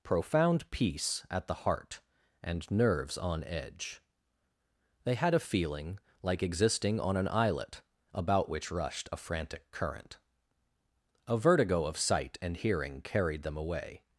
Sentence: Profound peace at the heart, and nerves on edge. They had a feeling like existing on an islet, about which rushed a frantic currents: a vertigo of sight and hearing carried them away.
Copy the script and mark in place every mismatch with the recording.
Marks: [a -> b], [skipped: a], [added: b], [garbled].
Profound peace at the heart, and nerves on edge. They had a feeling like existing on an islet, about which rushed a frantic [currents: -> current] a vertigo of sight and hearing carried them away.